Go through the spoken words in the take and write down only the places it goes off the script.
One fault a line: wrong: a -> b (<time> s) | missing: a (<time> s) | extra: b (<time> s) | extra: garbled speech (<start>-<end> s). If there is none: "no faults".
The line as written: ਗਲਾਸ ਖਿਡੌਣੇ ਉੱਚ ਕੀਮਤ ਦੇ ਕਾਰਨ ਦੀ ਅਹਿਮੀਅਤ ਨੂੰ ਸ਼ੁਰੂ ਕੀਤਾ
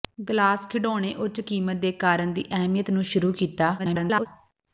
extra: garbled speech (3.8-4.3 s)